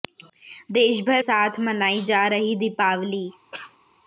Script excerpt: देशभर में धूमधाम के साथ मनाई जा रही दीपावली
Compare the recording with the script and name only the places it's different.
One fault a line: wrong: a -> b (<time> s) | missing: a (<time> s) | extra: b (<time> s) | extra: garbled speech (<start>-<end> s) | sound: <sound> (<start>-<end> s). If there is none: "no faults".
missing: में धूमधाम के (1.2 s)
sound: cough (3.5-3.8 s)